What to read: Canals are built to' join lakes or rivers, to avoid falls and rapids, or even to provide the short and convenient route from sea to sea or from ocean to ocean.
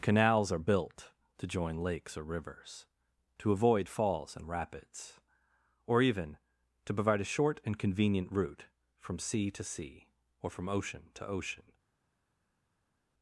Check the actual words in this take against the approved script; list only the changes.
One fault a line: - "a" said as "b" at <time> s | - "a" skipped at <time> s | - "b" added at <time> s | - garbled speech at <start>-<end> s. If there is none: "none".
- "the" said as "a" at 7.2 s